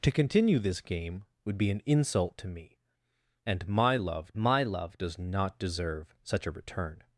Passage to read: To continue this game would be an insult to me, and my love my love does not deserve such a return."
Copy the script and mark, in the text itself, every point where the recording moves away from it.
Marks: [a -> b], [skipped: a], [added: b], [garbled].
To continue this game would be an insult to me, and my love my love does not deserve such a return."